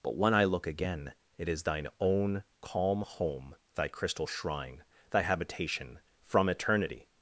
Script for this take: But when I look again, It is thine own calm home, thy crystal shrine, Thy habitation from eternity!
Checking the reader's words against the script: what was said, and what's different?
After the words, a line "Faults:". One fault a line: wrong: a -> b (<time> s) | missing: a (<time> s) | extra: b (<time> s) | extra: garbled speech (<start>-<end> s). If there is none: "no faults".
But when I look again, It is thine own calm home, thy crystal shrine, Thy habitation from eternity!
Faults:
no faults